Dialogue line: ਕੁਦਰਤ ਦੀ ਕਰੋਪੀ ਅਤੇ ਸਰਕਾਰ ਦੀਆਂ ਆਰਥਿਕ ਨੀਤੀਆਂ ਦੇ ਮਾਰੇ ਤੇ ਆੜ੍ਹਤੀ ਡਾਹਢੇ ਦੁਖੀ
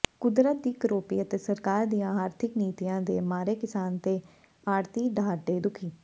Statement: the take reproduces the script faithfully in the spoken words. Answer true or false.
false